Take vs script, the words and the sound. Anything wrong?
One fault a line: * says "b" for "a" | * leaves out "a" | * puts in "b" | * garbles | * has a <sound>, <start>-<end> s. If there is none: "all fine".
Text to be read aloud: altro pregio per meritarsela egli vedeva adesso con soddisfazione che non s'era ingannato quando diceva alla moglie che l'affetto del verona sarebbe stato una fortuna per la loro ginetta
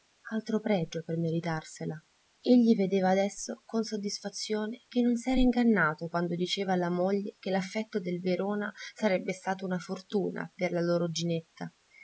all fine